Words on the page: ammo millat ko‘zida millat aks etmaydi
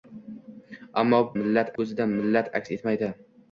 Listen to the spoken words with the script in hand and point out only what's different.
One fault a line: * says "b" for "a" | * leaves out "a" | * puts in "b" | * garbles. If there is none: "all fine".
all fine